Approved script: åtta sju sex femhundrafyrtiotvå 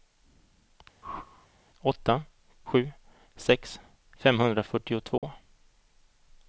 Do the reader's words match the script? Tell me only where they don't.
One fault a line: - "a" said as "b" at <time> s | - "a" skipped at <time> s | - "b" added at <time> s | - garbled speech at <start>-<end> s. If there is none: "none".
none